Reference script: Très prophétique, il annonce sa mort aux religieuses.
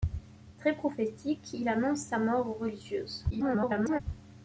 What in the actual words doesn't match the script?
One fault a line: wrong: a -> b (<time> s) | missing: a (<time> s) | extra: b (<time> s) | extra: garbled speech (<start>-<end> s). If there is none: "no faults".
extra: garbled speech (3.3-4.0 s)